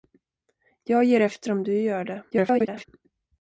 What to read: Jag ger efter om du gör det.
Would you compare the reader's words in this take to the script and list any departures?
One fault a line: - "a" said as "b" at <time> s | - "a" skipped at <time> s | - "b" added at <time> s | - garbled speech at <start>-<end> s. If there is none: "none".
- garbled speech at 2.3-2.9 s